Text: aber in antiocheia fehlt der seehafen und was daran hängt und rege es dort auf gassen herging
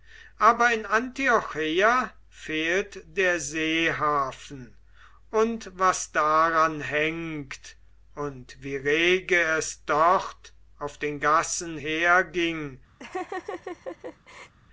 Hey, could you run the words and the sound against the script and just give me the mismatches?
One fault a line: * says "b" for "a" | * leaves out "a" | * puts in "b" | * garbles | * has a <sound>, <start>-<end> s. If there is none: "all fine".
* puts in "wie"
* puts in "den"
* has a laugh, 13.0-14.5 s